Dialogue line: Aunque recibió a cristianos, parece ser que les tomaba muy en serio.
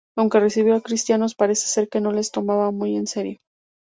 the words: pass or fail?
fail